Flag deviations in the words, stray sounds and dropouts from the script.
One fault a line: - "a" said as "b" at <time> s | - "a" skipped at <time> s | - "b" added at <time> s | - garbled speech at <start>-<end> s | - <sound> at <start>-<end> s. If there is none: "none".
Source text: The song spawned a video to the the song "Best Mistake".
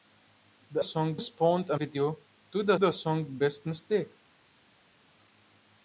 none